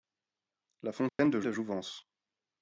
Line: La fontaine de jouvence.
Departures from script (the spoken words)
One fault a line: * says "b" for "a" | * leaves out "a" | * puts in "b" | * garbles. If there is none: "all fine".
* puts in "de"